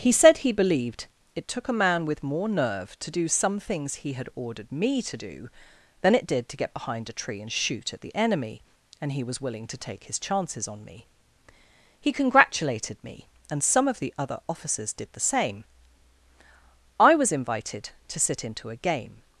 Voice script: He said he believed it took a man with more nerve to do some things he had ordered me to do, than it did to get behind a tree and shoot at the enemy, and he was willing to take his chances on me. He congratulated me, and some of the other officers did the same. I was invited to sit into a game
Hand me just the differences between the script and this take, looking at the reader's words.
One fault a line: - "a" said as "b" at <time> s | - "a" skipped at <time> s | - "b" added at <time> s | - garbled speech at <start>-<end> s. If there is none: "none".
none